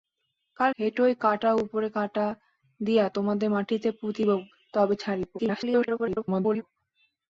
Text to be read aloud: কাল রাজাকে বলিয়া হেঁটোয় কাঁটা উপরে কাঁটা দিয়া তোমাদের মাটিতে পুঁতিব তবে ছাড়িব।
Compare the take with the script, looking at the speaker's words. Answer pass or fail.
fail